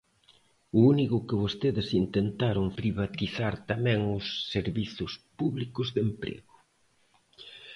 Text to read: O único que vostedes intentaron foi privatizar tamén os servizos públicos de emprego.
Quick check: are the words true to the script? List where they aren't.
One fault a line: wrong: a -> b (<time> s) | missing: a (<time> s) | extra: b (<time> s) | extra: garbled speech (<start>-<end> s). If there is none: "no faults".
missing: foi (2.7 s)